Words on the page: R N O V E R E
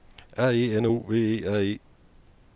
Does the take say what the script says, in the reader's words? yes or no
no